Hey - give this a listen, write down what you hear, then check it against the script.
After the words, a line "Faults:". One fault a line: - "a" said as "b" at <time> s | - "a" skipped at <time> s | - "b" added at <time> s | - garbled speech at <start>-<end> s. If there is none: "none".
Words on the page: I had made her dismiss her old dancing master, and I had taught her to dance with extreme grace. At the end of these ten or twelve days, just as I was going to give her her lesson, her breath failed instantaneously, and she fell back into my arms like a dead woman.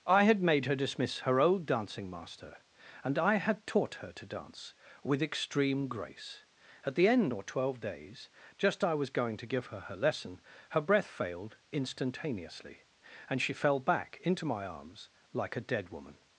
I had made her dismiss her old dancing master, and I had taught her to dance with extreme grace. At the end or twelve days, just I was going to give her her lesson, her breath failed instantaneously, and she fell back into my arms like a dead woman.
Faults:
- "of these ten" skipped at 7.3 s
- "as" skipped at 8.8 s